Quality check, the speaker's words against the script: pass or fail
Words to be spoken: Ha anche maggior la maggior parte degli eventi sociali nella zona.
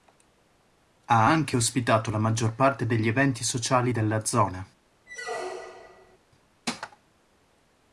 fail